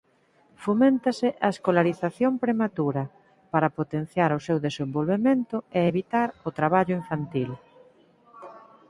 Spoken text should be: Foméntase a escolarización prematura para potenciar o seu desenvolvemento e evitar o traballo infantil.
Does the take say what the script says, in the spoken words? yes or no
yes